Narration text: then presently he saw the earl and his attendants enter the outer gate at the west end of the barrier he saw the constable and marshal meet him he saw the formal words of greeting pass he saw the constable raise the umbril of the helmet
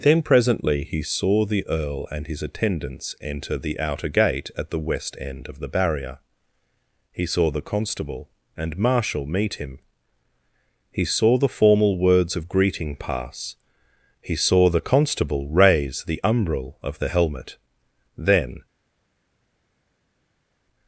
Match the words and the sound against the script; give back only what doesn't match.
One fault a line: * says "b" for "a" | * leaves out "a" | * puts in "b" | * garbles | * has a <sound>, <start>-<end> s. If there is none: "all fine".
* puts in "then"